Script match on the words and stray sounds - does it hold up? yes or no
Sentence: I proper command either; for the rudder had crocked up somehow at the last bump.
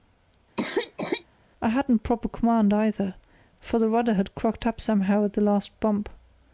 no